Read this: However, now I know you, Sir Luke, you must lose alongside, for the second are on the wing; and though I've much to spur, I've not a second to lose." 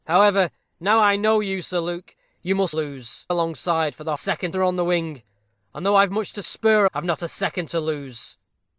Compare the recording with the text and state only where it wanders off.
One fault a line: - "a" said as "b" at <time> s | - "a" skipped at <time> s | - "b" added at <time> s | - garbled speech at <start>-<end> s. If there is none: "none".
none